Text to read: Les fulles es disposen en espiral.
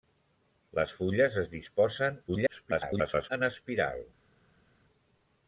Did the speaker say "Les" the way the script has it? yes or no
yes